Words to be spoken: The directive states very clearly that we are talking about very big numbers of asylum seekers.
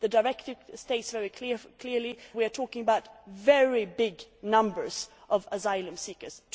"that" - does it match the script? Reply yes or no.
no